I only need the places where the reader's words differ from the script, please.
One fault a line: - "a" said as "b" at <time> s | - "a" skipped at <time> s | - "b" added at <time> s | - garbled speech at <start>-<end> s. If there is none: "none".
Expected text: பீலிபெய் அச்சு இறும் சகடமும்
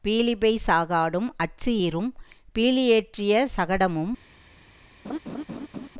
- "சாகாடும்" added at 0.7 s
- "பீலியேற்றிய" added at 2.5 s